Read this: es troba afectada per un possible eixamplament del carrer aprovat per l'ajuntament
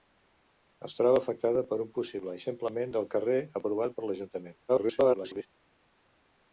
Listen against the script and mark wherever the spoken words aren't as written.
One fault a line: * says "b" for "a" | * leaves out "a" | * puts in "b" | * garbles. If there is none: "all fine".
* garbles